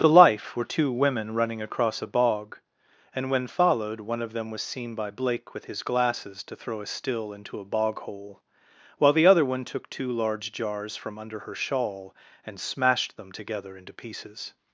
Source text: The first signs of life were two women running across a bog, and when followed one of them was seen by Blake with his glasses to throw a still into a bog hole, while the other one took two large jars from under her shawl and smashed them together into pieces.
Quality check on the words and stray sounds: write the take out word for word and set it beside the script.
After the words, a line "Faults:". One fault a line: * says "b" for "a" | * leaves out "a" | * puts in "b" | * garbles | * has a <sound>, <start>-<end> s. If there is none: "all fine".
The life were two women running across a bog, and when followed one of them was seen by Blake with his glasses to throw a still into a bog hole, while the other one took two large jars from under her shawl and smashed them together into pieces.
Faults:
* leaves out "first signs of"